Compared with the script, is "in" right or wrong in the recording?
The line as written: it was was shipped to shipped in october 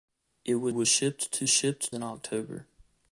right